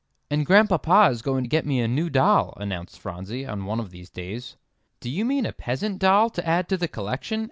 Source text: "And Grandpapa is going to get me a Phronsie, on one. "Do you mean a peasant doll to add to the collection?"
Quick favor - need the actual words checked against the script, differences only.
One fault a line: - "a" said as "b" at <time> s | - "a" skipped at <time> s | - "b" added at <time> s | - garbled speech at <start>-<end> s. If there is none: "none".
- "new doll announced" added at 1.9 s
- "of these days" added at 3.8 s